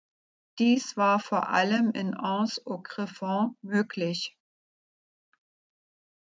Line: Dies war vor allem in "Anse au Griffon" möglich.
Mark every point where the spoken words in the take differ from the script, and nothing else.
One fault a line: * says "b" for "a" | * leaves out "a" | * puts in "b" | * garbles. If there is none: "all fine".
all fine